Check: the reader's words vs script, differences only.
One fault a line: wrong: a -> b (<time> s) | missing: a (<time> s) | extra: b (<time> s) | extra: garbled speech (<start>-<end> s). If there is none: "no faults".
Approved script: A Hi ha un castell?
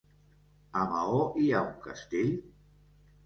extra: Maó (0.9 s)